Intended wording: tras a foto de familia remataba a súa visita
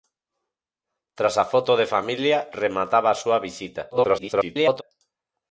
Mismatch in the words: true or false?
true